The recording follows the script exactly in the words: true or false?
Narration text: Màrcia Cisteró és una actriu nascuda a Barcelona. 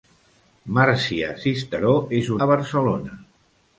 false